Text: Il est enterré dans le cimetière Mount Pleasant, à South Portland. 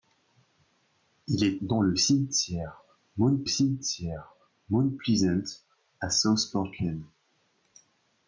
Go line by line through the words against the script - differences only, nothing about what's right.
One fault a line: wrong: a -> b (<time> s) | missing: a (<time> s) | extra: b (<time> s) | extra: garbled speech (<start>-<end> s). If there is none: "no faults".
missing: enterré (1.6 s)
extra: cimetière Mount (3.4 s)